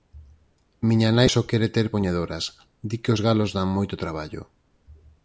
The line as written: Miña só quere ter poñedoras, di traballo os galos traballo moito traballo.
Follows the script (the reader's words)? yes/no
no